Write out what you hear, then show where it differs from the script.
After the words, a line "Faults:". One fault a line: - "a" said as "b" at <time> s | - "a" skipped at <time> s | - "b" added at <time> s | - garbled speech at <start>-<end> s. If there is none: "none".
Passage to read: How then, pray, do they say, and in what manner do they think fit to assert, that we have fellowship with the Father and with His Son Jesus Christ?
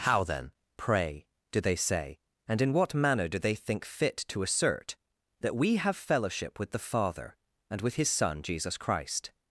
How then, pray, do they say, and in what manner do they think fit to assert, that we have fellowship with the Father and with His Son Jesus Christ?
Faults:
none